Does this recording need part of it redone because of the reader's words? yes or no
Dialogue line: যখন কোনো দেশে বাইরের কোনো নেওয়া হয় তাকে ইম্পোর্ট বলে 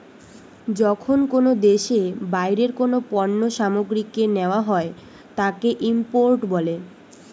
yes